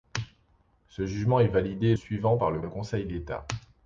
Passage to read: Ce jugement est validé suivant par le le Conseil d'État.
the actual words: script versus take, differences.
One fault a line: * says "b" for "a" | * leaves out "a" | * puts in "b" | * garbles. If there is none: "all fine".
all fine